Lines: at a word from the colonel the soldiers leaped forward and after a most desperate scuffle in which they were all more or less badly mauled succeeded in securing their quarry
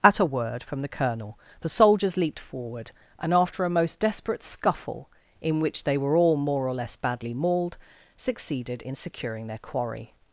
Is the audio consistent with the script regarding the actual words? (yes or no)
yes